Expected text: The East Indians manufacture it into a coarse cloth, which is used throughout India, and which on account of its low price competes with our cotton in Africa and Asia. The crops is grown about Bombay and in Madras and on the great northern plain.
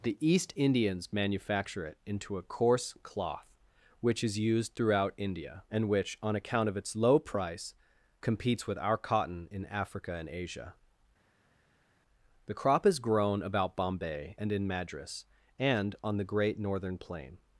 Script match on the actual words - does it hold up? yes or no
no